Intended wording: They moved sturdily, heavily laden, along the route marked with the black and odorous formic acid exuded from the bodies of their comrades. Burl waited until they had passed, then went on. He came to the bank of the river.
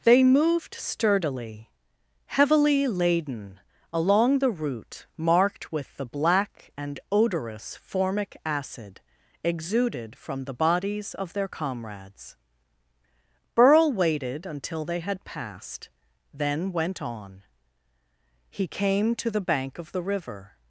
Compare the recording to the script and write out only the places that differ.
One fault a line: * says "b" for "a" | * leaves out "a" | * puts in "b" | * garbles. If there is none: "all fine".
all fine